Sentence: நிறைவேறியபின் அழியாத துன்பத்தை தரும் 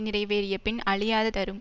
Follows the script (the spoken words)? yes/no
no